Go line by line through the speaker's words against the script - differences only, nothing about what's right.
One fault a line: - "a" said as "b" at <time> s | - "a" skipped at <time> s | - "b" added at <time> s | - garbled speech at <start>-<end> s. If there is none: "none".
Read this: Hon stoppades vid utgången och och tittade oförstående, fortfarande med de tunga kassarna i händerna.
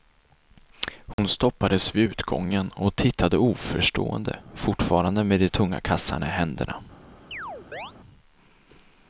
- "och" skipped at 3.0 s